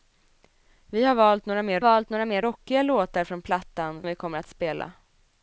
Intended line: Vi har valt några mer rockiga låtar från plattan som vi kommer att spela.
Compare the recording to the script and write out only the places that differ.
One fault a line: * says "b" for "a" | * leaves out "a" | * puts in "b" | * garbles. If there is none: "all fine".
* puts in "valt några mer"
* leaves out "som"